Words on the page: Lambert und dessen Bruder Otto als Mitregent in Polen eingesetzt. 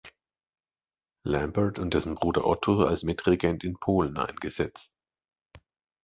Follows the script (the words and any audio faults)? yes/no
yes